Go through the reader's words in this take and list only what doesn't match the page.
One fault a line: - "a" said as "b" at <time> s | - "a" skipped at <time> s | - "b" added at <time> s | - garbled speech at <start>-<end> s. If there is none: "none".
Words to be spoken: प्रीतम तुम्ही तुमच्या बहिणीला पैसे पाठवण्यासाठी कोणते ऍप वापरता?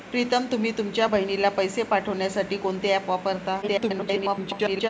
- garbled speech at 3.6-4.9 s